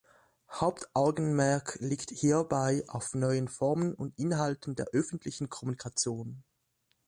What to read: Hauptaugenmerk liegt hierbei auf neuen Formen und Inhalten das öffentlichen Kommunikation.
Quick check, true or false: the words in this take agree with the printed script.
false